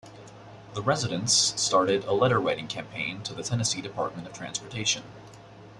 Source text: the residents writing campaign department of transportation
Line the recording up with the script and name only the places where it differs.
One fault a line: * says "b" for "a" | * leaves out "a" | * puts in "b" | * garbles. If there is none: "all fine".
* puts in "started a letter"
* puts in "to the tennessee"